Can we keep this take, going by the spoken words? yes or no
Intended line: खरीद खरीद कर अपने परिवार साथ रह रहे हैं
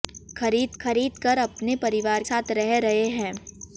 yes